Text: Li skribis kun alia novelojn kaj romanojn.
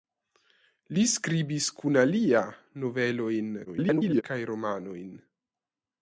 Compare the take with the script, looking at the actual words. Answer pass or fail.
fail